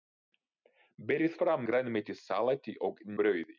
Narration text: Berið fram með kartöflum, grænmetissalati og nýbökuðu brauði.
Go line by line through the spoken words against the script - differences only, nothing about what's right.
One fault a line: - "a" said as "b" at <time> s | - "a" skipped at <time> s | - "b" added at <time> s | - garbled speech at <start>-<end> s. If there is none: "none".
- "með kartöflum" skipped at 1.7 s
- "nýbökuðu" skipped at 3.0 s